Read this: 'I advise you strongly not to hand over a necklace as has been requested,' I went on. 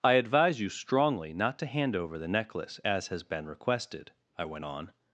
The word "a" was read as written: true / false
false